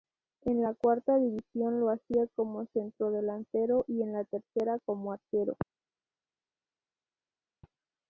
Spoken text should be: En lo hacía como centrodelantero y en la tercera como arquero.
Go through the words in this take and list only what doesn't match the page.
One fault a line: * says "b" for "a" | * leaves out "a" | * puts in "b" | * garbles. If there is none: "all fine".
* puts in "la cuarta división"